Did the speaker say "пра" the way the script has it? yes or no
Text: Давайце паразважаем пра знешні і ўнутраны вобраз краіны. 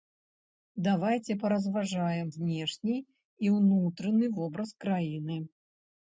no